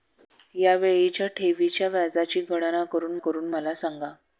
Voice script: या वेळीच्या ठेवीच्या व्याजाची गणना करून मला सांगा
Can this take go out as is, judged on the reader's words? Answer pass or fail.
fail